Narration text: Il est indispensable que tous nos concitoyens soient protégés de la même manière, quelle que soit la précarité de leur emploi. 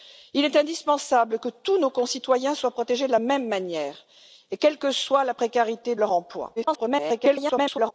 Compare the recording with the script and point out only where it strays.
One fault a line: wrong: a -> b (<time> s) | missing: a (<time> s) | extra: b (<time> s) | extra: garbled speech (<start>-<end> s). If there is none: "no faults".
missing: de (5.9 s)
extra: garbled speech (6.6-7.9 s)